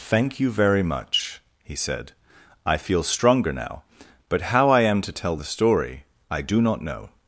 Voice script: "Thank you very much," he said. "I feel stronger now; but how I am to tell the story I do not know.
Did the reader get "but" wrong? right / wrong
right